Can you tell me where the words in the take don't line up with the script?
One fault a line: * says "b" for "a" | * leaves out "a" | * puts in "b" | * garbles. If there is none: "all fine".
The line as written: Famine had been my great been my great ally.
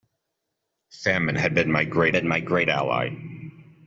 all fine